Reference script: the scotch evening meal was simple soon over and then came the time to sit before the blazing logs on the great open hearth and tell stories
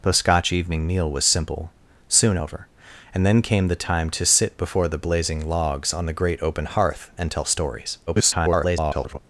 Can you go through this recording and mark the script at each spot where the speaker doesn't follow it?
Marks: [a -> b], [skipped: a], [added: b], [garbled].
the scotch evening meal was simple soon over and then came the time to sit before the blazing logs on the great open hearth and tell stories [garbled]